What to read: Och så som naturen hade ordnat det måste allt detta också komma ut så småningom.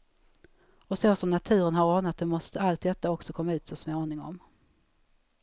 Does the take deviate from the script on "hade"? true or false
true